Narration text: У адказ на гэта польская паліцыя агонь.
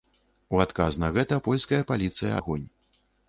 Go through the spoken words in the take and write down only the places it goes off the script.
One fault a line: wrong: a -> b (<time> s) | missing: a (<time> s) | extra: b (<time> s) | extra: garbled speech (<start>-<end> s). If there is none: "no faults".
no faults